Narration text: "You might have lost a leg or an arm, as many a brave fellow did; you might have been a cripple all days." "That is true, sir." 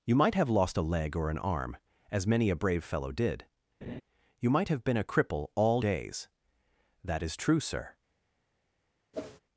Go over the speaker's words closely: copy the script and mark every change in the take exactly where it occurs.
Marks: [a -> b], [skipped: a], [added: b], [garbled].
"You might have lost a leg or an arm, as many a brave fellow did; you might have been a cripple all days." "That is true, sir."